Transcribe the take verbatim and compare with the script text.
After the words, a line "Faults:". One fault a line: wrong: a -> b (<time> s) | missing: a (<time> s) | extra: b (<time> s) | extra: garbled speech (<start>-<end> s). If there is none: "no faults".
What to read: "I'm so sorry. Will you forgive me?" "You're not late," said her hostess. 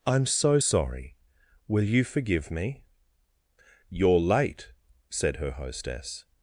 "I'm so sorry. Will you forgive me?" "You're late," said her hostess.
Faults:
missing: not (4.2 s)